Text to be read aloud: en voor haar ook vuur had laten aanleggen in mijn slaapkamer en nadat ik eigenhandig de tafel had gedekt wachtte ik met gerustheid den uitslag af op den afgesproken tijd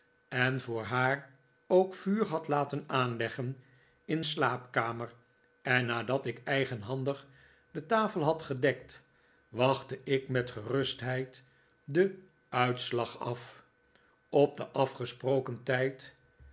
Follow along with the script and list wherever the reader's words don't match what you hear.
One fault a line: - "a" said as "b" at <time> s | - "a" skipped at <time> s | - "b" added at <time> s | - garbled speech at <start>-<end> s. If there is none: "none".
- "mijn" skipped at 4.2 s